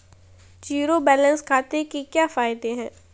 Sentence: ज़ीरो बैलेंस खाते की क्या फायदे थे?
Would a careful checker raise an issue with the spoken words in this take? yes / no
yes